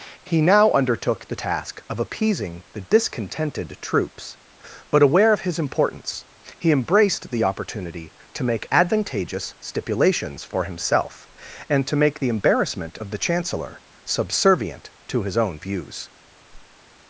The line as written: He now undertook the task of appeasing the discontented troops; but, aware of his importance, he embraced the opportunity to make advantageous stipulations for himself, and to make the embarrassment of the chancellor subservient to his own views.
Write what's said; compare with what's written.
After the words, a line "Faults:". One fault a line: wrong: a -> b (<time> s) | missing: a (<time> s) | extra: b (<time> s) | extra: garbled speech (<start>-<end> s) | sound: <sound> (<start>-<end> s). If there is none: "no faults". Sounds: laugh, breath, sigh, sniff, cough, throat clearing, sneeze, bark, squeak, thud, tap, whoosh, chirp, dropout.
He now undertook the task of appeasing the discontented troops; but, aware of his importance, he embraced the opportunity to make advantageous stipulations for himself, and to make the embarrassment of the chancellor subservient to his own views.
Faults:
sound: whoosh (16.5-16.8 s)